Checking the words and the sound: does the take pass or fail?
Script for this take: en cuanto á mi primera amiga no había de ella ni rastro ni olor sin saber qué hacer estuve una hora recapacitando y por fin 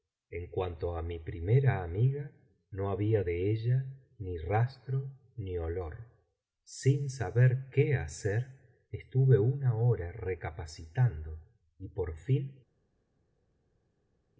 pass